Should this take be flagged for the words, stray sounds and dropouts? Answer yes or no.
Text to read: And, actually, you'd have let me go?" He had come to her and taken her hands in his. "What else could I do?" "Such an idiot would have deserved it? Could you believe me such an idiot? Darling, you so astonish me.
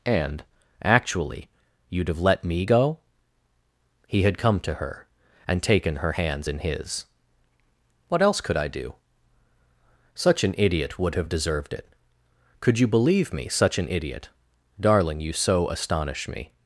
no